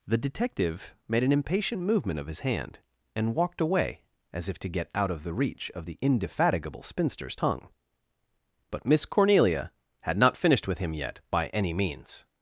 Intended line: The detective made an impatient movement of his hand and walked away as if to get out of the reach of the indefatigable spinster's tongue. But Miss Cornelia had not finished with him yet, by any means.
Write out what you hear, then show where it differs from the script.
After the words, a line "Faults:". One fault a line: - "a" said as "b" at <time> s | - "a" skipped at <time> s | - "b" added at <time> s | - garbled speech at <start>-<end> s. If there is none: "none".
The detective made an impatient movement of his hand and walked away as if to get out of the reach of the indefatigable spinster's tongue. But Miss Cornelia had not finished with him yet, by any means.
Faults:
none